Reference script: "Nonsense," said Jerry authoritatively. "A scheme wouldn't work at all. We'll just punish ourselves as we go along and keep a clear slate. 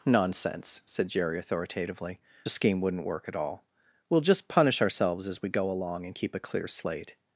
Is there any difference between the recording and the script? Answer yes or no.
no